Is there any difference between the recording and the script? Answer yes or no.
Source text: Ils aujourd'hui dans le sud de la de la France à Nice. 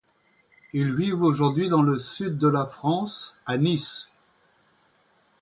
yes